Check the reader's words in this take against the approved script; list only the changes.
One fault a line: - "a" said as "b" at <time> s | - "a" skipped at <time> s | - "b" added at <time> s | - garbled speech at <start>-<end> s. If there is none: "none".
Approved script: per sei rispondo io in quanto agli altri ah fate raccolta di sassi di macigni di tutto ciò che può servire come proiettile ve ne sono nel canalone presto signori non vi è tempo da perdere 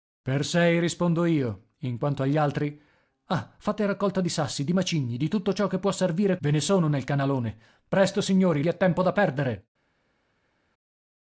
- "come proiettile" skipped at 6.4 s
- "non" skipped at 8.6 s